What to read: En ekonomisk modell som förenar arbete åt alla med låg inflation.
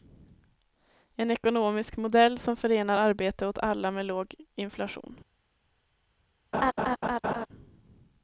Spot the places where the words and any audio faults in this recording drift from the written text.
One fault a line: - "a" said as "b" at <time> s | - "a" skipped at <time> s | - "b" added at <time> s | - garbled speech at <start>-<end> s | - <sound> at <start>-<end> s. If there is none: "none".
- laugh at 6.5-7.5 s